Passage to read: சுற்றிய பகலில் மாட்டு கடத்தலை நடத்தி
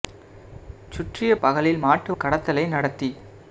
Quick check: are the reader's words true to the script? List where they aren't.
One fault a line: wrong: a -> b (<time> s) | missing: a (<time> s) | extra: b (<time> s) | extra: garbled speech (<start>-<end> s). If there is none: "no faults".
no faults